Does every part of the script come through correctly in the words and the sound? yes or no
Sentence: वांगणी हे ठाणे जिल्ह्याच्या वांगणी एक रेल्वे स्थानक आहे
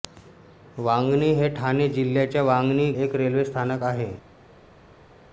yes